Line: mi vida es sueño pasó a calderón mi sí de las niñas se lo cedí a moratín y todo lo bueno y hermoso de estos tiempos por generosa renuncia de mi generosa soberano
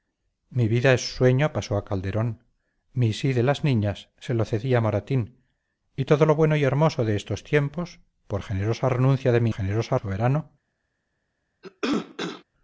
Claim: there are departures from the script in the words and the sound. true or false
true